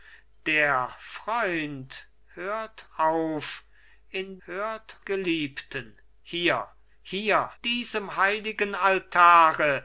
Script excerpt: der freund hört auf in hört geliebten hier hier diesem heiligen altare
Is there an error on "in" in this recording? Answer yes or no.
no